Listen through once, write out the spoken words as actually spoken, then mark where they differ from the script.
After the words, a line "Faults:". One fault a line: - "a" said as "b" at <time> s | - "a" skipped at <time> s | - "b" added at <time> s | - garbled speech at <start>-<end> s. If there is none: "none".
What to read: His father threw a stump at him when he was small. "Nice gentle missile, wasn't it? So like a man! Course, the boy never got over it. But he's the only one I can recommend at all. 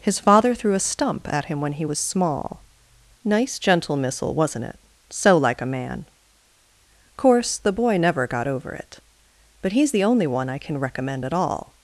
His father threw a stump at him when he was small. "Nice gentle missile, wasn't it? So like a man! Course, the boy never got over it. But he's the only one I can recommend at all.
Faults:
none